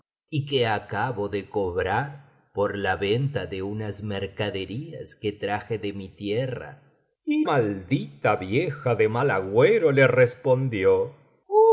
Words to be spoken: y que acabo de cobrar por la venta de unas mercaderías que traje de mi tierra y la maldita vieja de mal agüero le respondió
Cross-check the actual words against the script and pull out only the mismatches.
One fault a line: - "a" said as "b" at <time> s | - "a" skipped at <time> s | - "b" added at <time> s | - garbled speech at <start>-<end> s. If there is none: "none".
- "la" skipped at 7.5 s